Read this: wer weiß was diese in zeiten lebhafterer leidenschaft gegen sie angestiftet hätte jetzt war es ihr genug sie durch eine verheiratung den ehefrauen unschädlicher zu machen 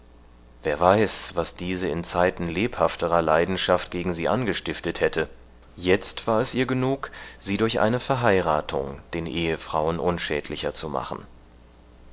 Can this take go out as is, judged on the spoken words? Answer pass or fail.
pass